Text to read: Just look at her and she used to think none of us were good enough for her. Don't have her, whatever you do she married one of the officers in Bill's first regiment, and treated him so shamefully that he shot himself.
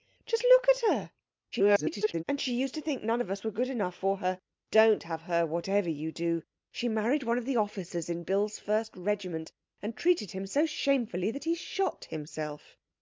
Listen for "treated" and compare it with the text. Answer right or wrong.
right